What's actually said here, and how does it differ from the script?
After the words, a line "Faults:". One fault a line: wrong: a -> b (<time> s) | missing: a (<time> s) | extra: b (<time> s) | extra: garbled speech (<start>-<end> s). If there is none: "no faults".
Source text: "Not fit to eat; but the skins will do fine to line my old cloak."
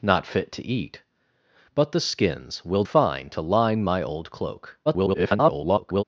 "Not fit to eat; but the skins will fine to line my old cloak." [garbled]
Faults:
missing: do (2.8 s)
extra: garbled speech (4.9-6.0 s)